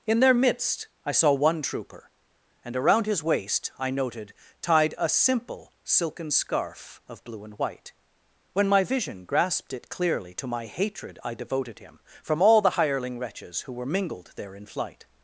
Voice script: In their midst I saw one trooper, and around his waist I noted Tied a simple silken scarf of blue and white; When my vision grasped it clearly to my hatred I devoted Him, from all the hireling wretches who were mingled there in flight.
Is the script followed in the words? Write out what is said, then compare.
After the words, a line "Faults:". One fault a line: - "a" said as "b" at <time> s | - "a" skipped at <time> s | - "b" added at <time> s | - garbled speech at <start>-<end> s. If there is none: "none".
In their midst I saw one trooper, and around his waist I noted Tied a simple silken scarf of blue and white; When my vision grasped it clearly to my hatred I devoted Him, from all the hireling wretches who were mingled there in flight.
Faults:
none